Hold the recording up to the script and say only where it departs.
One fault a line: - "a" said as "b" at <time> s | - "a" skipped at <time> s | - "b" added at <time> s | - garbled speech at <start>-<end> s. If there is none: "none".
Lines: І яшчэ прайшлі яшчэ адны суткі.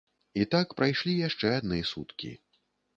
- "яшчэ" said as "так" at 0.6 s